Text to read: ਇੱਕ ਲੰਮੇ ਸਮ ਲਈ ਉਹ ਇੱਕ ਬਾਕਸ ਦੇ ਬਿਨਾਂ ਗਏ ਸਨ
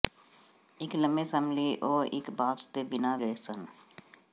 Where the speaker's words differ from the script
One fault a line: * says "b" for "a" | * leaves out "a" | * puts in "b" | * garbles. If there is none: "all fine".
all fine